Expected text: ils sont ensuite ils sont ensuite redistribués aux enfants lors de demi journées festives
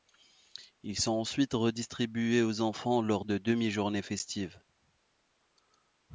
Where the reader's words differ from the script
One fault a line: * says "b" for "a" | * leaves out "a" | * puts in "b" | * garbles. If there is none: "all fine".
* leaves out "ils sont ensuite"